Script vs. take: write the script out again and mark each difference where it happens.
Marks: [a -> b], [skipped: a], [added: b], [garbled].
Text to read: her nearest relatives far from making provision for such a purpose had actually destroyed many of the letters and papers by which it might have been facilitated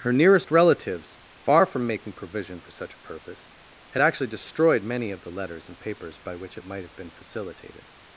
her nearest relatives far from making provision for such a purpose had actually destroyed many of the letters and papers by which it might have been facilitated